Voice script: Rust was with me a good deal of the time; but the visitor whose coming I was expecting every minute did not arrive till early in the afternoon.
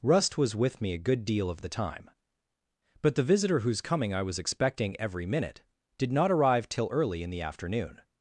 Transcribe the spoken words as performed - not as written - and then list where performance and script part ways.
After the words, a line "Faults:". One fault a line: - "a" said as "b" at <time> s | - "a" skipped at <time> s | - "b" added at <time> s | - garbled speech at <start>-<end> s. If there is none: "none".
Rust was with me a good deal of the time; but the visitor whose coming I was expecting every minute did not arrive till early in the afternoon.
Faults:
none